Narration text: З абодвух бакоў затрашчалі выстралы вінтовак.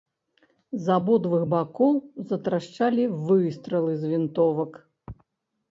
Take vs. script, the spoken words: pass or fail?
fail